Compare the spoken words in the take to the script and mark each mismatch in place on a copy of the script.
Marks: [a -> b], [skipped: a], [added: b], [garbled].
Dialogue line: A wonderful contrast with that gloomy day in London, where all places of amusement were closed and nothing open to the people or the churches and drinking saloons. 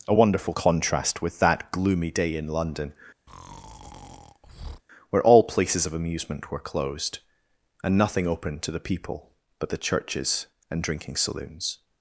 A wonderful contrast with that gloomy day in London, where all places of amusement were closed and nothing open to the people [or -> but] the churches and drinking saloons.